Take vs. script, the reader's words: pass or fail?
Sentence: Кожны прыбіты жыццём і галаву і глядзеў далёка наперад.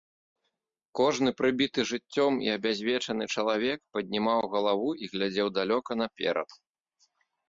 fail